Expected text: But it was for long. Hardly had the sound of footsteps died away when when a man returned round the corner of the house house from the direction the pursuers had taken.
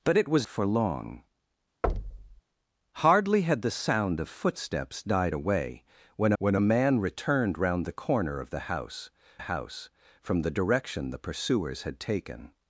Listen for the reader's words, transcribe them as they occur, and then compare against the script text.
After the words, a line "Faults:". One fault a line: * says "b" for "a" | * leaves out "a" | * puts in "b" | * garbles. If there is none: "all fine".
But it was for long. Hardly had the sound of footsteps died away when when a man returned round the corner of the house house from the direction the pursuers had taken.
Faults:
all fine